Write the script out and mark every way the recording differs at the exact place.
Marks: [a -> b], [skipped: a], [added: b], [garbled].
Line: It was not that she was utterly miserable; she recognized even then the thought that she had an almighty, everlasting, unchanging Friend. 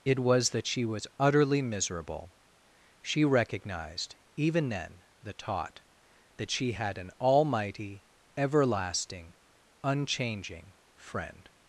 It was [skipped: not] that she was utterly miserable; she recognized even then the [thought -> taught] that she had an almighty, everlasting, unchanging Friend.